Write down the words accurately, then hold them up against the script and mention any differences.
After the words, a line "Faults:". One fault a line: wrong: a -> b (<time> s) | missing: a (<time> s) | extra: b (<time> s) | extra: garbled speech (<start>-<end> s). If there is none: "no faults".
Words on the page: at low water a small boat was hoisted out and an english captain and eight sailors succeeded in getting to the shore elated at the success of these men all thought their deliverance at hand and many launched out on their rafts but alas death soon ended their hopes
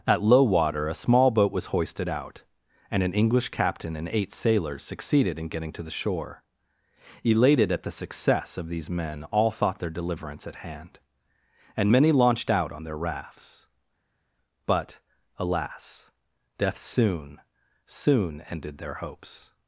at low water a small boat was hoisted out and an english captain and eight sailors succeeded in getting to the shore elated at the success of these men all thought their deliverance at hand and many launched out on their rafts but alas death soon soon ended their hopes
Faults:
extra: soon (17.9 s)